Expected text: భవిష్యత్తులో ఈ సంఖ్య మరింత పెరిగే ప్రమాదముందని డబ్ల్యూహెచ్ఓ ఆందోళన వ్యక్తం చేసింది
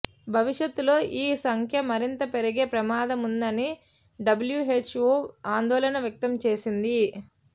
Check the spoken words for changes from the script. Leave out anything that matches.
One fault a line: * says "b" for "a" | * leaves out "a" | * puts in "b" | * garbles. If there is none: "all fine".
all fine